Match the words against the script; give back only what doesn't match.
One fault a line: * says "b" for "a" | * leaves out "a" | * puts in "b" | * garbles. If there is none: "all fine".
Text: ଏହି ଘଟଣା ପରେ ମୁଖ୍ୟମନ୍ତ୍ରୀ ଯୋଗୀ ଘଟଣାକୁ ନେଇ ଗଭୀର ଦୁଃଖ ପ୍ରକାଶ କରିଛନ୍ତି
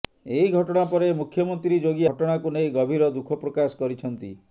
all fine